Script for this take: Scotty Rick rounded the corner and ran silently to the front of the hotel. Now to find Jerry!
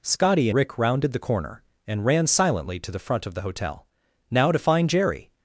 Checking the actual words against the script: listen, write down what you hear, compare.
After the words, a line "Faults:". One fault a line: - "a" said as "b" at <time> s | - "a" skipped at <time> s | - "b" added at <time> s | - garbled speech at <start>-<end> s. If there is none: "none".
Scotty Rick rounded the corner and ran silently to the front of the hotel. Now to find Jerry!
Faults:
none